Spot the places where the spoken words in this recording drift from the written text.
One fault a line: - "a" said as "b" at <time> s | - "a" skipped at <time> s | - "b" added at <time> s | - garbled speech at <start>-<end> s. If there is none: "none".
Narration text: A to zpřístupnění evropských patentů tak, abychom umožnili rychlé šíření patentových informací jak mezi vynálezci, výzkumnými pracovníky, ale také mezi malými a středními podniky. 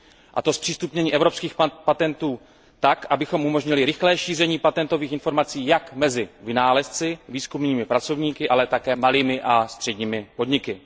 - "mezi" skipped at 9.0 s